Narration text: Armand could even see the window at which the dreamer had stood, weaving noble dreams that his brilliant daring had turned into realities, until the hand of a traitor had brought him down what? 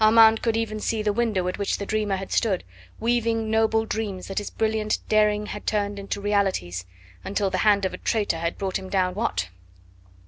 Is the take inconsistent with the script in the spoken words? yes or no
no